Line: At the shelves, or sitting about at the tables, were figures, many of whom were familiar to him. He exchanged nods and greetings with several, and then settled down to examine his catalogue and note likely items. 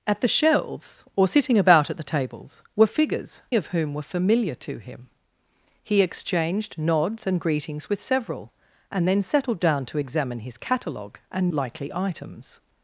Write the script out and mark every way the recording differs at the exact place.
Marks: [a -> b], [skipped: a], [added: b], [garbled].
At the shelves, or sitting about at the tables, were figures, [skipped: many] of whom were familiar to him. He exchanged nods and greetings with several, and then settled down to examine his catalogue and [skipped: note] likely items.